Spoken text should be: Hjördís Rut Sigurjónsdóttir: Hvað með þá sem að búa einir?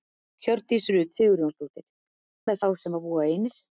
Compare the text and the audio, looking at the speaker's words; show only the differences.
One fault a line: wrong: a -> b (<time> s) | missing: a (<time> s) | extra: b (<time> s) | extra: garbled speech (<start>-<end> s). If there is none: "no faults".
missing: Hvað (1.9 s)